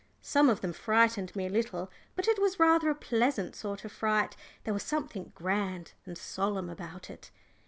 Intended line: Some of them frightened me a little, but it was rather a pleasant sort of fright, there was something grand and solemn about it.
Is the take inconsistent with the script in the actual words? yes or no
no